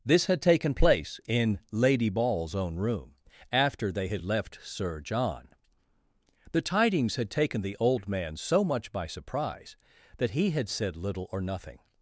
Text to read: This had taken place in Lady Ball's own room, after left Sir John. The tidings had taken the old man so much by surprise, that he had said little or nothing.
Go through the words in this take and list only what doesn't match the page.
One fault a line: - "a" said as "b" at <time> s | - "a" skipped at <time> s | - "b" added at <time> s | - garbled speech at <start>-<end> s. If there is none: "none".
- "they had" added at 3.9 s